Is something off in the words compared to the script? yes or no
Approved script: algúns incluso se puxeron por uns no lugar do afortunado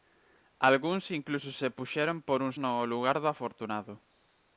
no